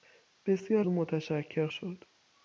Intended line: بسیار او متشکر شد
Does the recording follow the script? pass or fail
pass